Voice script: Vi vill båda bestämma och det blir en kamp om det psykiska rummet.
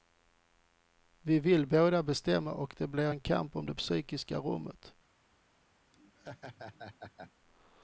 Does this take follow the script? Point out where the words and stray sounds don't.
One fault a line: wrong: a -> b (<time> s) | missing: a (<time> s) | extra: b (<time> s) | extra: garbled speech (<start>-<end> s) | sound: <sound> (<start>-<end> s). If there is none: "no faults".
sound: laugh (5.9-7.3 s)